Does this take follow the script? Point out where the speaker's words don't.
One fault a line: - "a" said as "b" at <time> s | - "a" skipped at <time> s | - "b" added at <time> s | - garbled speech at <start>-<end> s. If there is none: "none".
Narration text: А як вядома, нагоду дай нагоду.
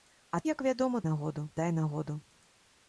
none